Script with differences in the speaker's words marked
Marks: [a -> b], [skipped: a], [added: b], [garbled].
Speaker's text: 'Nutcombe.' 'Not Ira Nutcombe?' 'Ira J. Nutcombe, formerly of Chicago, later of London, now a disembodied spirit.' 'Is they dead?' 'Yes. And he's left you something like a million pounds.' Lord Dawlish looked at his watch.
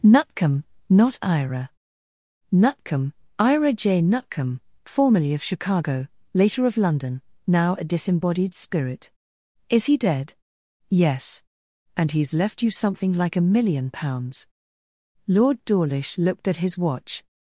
'Nutcombe.' 'Not Ira Nutcombe?' 'Ira J. Nutcombe, formerly of Chicago, later of London, now a disembodied spirit.' 'Is [they -> he] dead?' 'Yes. And he's left you something like a million pounds.' Lord Dawlish looked at his watch.